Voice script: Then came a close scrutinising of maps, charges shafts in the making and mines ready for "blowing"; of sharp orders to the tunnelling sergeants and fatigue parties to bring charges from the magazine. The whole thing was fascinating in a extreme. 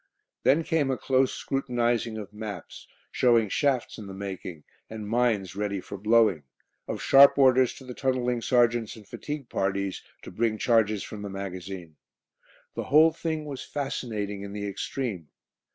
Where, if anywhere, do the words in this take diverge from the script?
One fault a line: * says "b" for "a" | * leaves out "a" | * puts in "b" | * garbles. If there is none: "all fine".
* says "showing" for "charges"
* says "the" for "a"